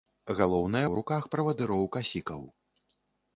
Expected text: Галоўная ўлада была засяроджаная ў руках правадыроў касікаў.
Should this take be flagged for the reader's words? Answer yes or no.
yes